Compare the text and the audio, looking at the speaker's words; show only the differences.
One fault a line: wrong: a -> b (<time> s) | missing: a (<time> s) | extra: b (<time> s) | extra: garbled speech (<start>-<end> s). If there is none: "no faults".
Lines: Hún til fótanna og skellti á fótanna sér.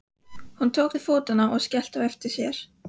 extra: tók (0.8 s)
wrong: fótanna -> eftir (2.1 s)